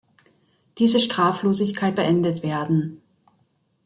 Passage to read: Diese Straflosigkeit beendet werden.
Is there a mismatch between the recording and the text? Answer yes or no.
no